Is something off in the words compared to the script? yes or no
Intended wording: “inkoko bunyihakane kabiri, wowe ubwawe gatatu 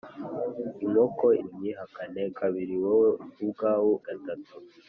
no